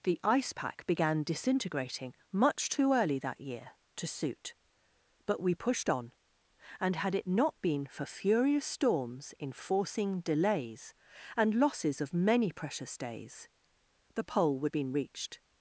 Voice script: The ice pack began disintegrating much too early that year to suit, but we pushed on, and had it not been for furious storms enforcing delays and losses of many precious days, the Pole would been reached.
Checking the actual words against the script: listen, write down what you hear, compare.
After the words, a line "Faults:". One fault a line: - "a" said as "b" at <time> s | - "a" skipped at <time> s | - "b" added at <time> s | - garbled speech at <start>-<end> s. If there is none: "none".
The ice pack began disintegrating much too early that year to suit, but we pushed on, and had it not been for furious storms enforcing delays and losses of many precious days, the Pole would been reached.
Faults:
none